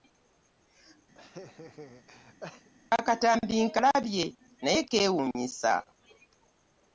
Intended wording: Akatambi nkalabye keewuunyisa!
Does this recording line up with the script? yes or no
no